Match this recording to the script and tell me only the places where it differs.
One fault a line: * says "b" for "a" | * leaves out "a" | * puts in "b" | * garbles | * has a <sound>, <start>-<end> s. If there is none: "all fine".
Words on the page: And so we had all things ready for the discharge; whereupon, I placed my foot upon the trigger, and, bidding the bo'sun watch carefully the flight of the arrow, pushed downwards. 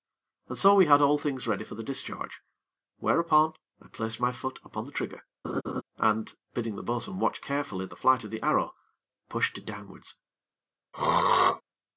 * has a laugh, 5.4-5.8 s
* has a throat clearing, 10.9-11.6 s